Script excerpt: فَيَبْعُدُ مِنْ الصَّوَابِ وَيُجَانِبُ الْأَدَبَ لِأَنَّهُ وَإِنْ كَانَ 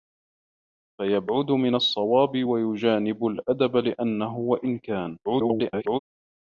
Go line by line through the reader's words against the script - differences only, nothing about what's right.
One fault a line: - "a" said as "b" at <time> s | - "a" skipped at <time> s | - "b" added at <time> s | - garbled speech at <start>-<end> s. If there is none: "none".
- garbled speech at 5.2-6.0 s